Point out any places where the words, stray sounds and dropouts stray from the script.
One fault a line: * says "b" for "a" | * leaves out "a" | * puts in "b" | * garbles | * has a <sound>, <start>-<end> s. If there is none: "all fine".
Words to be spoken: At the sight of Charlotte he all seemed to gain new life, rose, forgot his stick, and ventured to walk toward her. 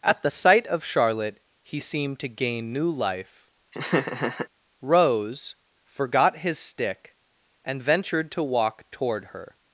* leaves out "all"
* has a laugh, 3.7-4.5 s